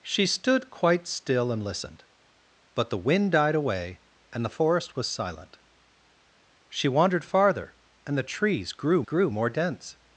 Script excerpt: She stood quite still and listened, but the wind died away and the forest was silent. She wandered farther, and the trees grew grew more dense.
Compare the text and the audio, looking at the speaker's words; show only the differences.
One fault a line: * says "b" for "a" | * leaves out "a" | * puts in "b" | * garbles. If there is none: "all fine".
all fine